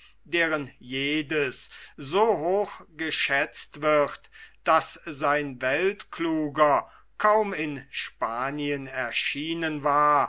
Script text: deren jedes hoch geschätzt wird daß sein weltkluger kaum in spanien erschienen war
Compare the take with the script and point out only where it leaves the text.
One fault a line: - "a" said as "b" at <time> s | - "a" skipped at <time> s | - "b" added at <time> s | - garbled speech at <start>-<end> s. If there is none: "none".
- "so" added at 2.0 s